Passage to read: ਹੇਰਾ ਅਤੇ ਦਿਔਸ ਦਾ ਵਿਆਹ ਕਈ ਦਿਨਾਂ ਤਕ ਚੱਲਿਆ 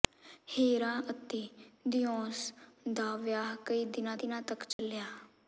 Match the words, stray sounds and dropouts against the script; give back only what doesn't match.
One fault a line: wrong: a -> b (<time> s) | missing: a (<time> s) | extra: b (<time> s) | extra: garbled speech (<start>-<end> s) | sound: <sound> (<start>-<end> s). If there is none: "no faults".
extra: ਦਿਨਾਂ (4.1 s)
sound: dropout (4.7-4.8 s)